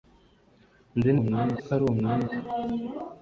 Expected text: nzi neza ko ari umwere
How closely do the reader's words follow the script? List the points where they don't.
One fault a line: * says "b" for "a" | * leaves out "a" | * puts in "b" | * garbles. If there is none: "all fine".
* says "umwere" for "neza"